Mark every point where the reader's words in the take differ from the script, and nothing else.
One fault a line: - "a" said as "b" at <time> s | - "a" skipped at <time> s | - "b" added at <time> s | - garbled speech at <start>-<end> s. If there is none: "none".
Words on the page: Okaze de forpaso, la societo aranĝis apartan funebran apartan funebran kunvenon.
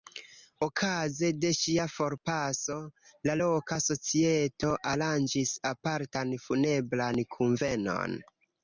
- "ŝia" added at 1.6 s
- "loka" added at 3.4 s
- "apartan funebran" skipped at 7.2 s